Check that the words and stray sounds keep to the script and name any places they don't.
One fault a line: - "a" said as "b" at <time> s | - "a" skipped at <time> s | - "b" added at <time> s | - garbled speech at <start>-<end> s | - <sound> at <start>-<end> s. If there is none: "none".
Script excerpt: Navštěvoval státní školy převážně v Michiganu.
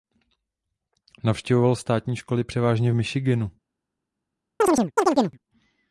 - chirp at 4.6-5.4 s